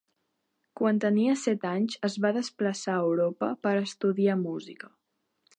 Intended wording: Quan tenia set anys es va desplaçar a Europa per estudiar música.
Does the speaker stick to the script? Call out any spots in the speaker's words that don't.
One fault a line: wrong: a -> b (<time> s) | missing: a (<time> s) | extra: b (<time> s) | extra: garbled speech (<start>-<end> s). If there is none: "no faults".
no faults